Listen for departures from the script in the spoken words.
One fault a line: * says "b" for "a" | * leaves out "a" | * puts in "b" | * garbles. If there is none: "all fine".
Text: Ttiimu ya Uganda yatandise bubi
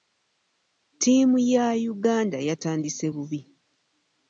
all fine